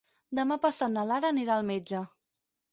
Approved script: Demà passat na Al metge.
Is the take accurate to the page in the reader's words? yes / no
no